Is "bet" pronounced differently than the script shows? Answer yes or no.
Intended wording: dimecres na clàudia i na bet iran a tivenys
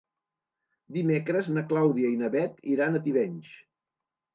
no